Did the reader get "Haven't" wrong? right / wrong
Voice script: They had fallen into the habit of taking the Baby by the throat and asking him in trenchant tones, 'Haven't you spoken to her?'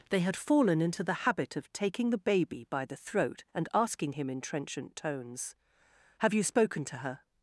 wrong